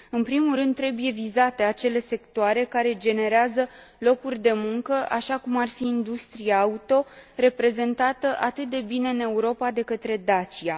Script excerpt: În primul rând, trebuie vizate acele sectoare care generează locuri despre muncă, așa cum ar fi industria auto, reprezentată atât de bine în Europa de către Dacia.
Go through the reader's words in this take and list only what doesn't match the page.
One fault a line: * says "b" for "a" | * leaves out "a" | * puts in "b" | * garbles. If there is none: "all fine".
* says "de" for "despre"